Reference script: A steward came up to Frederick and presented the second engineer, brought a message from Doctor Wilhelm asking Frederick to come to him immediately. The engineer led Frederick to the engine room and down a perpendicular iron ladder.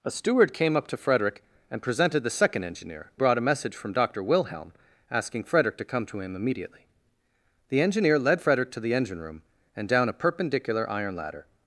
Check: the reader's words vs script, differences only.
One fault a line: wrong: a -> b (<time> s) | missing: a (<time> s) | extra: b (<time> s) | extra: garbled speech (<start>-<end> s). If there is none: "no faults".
no faults